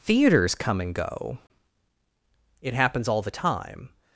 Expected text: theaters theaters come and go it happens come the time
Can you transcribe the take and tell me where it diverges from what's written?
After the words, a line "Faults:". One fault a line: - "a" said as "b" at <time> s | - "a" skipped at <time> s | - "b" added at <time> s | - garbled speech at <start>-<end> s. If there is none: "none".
theaters come and go it happens all the time
Faults:
- "theaters" skipped at 0.6 s
- "come" said as "all" at 3.1 s